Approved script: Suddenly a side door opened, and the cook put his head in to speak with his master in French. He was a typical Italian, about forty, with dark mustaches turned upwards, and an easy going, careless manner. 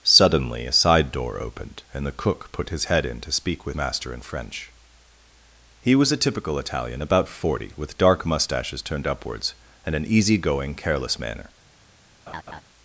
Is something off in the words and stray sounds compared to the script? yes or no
yes